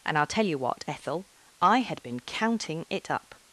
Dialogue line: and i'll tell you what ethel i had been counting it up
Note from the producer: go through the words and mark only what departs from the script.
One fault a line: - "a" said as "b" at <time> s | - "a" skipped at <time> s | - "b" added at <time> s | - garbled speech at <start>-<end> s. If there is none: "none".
none